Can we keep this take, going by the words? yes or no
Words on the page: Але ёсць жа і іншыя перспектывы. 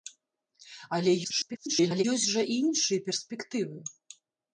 no